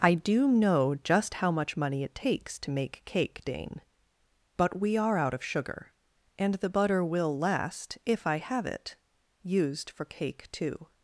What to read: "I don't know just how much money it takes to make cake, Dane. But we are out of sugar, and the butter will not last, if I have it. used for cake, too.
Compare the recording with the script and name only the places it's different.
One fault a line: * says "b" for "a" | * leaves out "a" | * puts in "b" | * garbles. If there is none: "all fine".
* says "do" for "don't"
* leaves out "not"